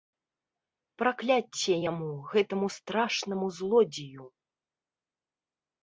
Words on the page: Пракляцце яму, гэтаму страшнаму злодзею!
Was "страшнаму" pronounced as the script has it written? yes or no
yes